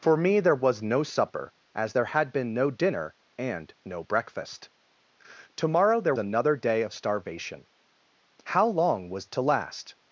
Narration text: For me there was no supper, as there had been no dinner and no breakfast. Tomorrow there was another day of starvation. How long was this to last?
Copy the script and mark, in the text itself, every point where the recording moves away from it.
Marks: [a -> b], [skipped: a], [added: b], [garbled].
For me there was no supper, as there had been no dinner and no breakfast. Tomorrow there [skipped: was] another day of starvation. How long was [skipped: this] to last?